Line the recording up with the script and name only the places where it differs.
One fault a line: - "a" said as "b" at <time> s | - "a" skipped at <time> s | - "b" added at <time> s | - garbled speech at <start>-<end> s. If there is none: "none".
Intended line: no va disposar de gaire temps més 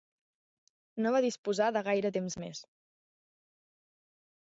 none